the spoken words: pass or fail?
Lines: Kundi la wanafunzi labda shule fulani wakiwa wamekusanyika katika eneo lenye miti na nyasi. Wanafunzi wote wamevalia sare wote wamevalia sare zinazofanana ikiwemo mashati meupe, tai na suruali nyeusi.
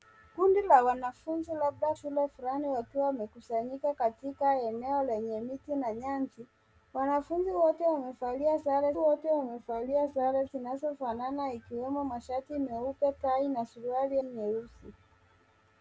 pass